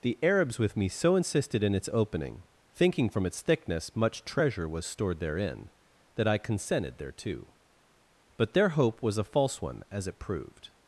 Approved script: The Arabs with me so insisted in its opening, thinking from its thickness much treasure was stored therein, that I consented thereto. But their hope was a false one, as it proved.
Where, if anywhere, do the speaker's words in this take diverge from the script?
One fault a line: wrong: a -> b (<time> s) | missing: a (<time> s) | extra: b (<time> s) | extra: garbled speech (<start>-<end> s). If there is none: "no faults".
no faults